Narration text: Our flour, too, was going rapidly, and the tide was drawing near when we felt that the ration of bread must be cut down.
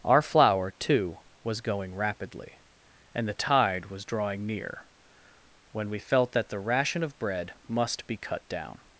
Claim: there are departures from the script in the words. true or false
false